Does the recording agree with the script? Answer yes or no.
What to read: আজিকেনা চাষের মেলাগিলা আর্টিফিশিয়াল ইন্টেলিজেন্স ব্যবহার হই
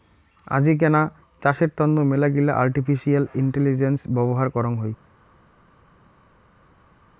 no